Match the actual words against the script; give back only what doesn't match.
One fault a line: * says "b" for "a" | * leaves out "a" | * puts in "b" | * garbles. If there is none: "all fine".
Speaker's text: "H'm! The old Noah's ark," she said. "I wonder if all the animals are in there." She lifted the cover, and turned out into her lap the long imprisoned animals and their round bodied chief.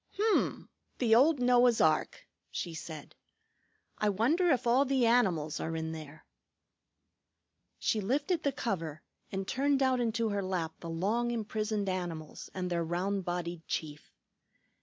all fine